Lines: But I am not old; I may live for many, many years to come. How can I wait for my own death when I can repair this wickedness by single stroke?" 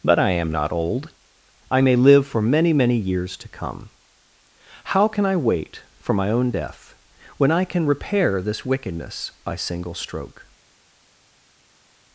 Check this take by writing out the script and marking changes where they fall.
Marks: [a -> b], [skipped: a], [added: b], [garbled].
But I am not old; I may live for many, many years to come. How can I wait for my own death when I can repair this wickedness by single stroke?"